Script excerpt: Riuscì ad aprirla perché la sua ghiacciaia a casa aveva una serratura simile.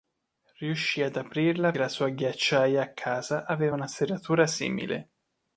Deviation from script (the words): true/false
true